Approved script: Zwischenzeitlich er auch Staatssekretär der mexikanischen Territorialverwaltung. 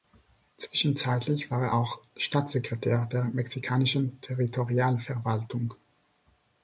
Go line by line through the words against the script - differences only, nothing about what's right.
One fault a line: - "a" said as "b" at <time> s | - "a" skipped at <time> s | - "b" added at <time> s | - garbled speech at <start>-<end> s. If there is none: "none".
- "war" added at 1.5 s